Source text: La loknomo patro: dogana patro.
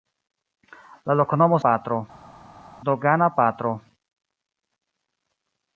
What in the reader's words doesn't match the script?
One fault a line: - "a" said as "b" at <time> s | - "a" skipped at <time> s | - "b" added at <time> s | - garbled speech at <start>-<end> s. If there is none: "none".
none